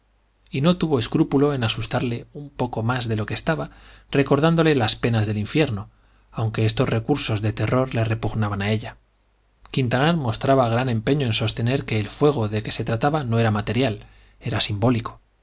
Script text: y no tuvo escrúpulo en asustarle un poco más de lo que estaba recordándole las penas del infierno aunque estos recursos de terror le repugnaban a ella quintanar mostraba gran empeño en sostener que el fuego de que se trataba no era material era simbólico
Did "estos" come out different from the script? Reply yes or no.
no